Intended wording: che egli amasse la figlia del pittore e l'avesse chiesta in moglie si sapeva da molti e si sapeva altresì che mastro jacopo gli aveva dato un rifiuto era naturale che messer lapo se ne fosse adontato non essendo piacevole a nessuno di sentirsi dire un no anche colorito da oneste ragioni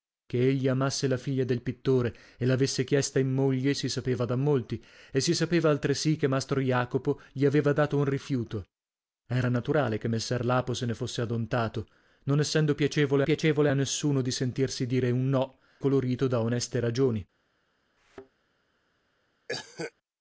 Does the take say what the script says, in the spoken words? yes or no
no